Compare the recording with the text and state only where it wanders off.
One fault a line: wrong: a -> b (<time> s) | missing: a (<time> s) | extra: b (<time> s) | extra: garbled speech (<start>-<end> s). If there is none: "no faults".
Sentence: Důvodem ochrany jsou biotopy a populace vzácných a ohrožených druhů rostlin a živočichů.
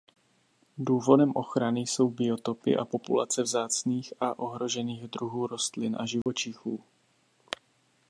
no faults